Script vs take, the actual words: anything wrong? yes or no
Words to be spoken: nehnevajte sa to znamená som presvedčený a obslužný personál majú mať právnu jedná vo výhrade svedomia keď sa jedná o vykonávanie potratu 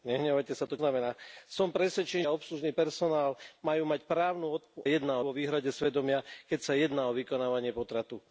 no